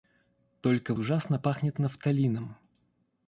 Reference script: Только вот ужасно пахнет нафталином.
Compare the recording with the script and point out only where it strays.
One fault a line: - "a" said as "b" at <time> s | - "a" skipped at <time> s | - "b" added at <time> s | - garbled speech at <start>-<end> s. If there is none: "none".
- "вот" skipped at 0.9 s